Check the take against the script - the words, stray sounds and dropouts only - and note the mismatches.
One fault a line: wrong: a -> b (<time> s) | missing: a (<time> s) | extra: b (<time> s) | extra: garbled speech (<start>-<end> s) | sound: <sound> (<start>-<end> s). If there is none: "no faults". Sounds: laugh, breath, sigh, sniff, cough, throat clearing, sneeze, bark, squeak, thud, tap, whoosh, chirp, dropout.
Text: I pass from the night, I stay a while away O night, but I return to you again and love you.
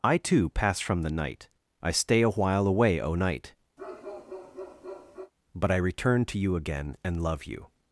extra: too (0.2 s)
sound: bark (3.8-5.3 s)